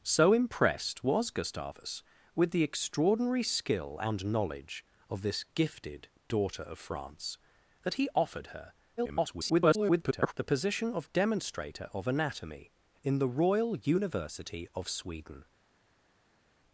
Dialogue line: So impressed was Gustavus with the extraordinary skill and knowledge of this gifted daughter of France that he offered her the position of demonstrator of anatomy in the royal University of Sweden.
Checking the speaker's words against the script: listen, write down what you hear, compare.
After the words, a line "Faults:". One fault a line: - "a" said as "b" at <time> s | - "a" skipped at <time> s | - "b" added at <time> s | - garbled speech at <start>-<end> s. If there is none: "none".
So impressed was Gustavus with the extraordinary skill and knowledge of this gifted daughter of France that he offered her [garbled] the position of demonstrator of anatomy in the royal University of Sweden.
Faults:
- garbled speech at 9.0-10.3 s